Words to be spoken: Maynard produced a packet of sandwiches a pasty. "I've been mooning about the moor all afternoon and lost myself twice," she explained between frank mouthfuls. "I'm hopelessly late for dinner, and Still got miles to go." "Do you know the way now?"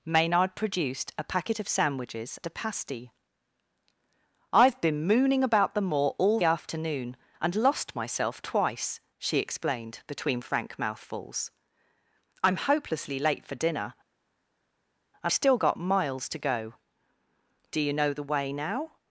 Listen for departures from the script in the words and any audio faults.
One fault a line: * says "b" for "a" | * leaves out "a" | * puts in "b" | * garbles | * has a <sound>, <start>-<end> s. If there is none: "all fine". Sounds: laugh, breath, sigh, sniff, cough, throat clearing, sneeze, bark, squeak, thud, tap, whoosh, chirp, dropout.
all fine